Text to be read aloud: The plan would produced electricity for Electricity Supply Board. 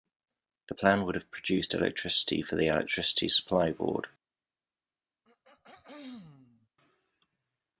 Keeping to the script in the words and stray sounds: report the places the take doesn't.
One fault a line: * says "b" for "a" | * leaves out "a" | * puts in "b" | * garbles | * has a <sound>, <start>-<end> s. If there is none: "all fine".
* puts in "have"
* puts in "the"
* has a throat clearing, 5.2-6.7 s